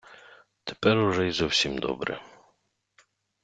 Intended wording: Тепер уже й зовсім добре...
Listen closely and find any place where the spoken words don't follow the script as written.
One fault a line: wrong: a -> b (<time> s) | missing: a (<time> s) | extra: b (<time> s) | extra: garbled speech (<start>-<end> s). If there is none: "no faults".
no faults